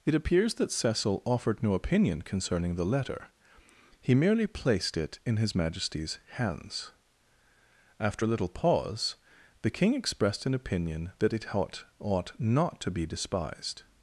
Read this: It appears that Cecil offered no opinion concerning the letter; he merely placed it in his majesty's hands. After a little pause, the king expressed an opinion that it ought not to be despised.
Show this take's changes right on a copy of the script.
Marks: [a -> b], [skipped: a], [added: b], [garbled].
It appears that Cecil offered no opinion concerning the letter; he merely placed it in his majesty's hands. After a little pause, the king expressed an opinion that it ought [added: ought] not to be despised.